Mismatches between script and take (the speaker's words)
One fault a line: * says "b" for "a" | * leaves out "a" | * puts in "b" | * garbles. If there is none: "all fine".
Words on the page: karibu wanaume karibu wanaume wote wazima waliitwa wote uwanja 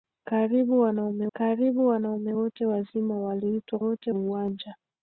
all fine